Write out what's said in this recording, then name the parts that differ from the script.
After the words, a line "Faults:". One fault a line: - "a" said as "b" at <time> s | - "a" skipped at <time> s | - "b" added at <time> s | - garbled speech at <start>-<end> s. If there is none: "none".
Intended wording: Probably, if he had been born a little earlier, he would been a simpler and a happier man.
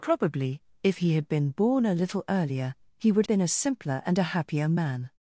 Probably, if he had been born a little earlier, he would been a simpler and a happier man.
Faults:
none